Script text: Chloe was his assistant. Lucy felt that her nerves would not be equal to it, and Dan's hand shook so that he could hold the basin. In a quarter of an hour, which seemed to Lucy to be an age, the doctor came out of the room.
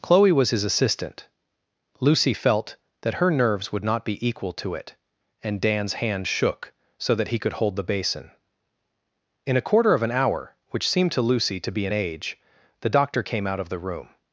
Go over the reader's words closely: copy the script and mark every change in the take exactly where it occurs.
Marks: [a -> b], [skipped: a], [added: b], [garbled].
Chloe was his assistant. Lucy felt that her nerves would not be equal to it, and Dan's hand shook so that he could hold the basin. In a quarter of an hour, which seemed to Lucy to be an age, the doctor came out of the room.